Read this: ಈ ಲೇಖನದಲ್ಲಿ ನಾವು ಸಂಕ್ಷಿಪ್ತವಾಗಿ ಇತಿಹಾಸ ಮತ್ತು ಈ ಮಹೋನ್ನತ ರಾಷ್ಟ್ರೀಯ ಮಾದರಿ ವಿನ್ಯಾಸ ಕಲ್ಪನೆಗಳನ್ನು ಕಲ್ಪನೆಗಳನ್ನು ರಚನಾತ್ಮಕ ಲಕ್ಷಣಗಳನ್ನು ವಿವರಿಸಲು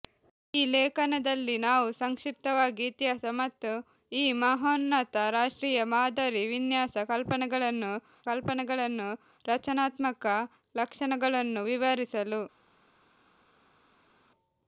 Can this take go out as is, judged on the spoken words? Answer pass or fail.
pass